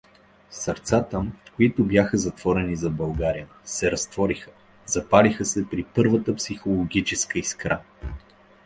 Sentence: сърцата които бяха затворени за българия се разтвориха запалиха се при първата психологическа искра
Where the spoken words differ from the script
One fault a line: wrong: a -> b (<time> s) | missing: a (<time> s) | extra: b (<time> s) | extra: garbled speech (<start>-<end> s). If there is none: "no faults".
no faults